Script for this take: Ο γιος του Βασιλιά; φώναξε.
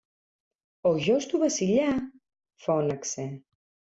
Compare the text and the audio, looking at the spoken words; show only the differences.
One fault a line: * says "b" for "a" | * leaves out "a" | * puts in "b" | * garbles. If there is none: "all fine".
all fine